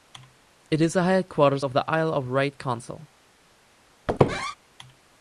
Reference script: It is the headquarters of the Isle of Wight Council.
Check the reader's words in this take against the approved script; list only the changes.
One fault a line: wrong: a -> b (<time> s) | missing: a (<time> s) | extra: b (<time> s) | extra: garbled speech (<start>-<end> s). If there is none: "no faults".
no faults